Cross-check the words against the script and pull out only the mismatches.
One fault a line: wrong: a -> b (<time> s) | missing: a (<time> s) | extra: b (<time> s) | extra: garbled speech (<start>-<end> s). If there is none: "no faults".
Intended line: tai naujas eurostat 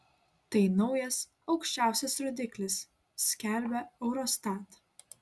extra: aukščiausias rodiklis skelbia (1.6 s)